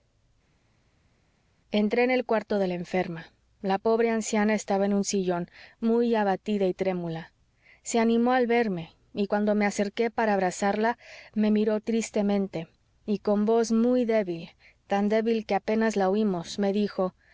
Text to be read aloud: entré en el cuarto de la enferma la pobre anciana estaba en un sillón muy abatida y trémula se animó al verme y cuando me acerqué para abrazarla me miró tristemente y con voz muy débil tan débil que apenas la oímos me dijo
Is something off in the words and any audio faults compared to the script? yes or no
no